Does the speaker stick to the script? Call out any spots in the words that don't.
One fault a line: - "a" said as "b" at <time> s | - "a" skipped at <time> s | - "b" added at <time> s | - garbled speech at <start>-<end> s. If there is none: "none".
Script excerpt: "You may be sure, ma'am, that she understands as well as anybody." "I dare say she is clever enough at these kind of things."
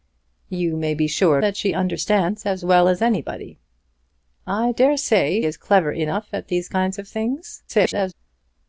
- "ma'am" skipped at 1.4 s
- "she" skipped at 5.4 s
- garbled speech at 7.7-8.1 s